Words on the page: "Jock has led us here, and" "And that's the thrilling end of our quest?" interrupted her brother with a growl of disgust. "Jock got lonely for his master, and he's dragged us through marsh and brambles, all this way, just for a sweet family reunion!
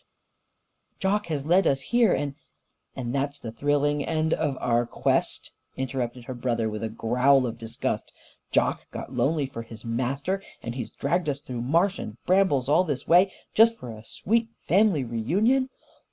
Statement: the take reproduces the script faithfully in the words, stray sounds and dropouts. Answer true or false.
true